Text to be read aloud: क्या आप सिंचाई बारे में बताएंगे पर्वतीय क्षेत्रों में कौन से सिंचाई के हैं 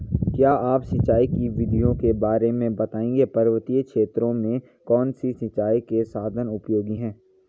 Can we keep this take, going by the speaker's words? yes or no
no